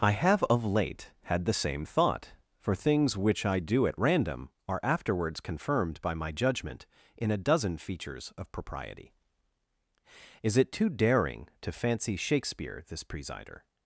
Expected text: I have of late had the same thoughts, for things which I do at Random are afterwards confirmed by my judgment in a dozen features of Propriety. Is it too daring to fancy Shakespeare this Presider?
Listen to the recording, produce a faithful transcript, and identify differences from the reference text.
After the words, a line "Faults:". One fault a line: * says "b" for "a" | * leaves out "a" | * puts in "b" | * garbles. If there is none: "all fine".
I have of late had the same thought, for things which I do at Random are afterwards confirmed by my judgment in a dozen features of Propriety. Is it too daring to fancy Shakespeare this Presider?
Faults:
* says "thought" for "thoughts"